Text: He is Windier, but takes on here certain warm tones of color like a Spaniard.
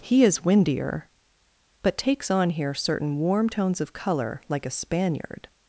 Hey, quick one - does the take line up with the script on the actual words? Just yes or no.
yes